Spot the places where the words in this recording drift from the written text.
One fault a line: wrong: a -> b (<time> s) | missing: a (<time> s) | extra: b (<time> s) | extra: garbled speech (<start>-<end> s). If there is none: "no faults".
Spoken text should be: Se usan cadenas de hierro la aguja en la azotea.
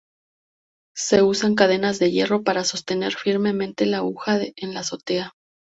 extra: para sostener firmemente (2.4 s)